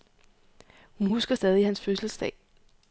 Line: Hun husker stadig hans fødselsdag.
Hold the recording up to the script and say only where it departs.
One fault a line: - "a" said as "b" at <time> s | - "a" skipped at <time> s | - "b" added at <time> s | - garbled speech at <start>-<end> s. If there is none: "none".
none